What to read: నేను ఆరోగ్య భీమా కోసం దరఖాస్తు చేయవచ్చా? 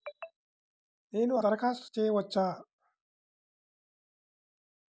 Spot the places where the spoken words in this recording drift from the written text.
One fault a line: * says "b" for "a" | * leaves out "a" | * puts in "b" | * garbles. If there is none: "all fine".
* leaves out "ఆరోగ్య భీమా కోసం"